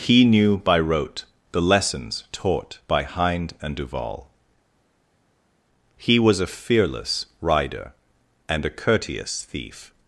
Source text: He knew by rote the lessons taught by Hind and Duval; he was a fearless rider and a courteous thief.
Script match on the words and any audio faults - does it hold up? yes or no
yes